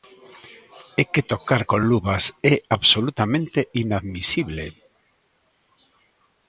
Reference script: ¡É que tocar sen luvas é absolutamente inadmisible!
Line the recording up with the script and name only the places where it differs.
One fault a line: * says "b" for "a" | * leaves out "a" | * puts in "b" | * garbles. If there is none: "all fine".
* says "con" for "sen"